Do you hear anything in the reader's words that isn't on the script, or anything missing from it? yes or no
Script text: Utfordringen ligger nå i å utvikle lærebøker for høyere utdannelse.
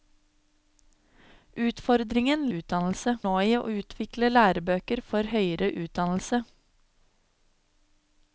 yes